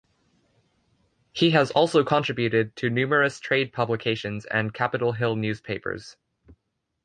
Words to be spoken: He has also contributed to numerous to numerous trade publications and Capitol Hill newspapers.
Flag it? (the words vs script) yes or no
yes